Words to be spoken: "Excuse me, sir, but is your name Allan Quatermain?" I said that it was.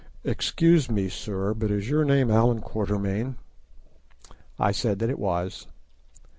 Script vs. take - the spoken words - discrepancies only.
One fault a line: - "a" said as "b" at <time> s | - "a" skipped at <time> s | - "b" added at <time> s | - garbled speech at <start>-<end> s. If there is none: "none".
none